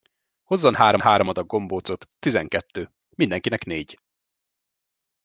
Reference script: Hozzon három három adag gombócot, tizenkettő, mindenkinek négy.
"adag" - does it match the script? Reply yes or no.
yes